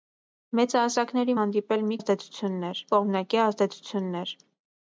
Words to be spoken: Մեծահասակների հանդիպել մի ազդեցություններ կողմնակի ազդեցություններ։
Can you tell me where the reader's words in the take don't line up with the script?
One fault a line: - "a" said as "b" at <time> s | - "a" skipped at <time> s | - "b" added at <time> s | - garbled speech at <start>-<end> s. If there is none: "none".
none